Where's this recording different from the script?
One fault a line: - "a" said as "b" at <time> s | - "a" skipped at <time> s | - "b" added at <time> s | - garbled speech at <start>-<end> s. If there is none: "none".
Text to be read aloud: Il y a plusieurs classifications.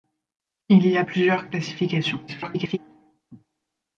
- garbled speech at 2.3-2.8 s